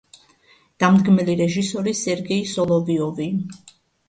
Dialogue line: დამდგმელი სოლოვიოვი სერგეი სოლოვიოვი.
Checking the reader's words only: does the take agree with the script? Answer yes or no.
no